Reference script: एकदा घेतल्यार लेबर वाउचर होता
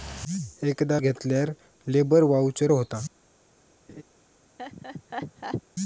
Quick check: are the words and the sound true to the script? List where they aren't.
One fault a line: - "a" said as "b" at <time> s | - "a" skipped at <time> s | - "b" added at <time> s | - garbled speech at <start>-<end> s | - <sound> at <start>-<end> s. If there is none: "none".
- laugh at 3.9-4.0 s
- laugh at 4.6-5.6 s